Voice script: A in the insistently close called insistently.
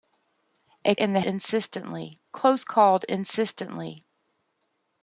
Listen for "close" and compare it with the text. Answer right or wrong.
right